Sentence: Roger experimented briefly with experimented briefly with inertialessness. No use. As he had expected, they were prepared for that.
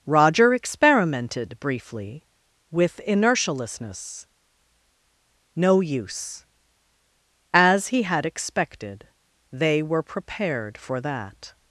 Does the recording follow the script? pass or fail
fail